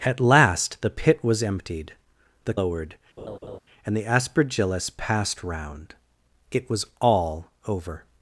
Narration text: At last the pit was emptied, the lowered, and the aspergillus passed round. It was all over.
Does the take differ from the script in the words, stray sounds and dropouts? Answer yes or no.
yes